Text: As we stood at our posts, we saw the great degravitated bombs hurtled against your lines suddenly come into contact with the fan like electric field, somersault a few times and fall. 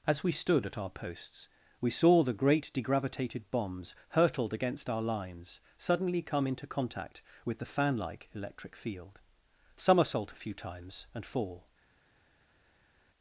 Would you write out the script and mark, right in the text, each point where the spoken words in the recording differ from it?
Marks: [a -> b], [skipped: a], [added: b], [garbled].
As we stood at our posts, we saw the great degravitated bombs hurtled against [your -> our] lines suddenly come into contact with the fan like electric field, somersault a few times and fall.